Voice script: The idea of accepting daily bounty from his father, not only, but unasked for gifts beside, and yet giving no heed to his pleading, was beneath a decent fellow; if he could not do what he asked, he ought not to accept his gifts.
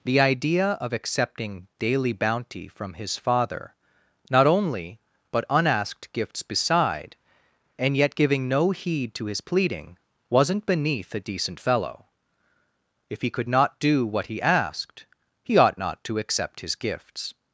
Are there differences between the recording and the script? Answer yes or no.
yes